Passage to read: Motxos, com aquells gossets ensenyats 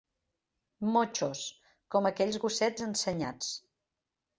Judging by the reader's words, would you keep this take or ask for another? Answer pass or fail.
pass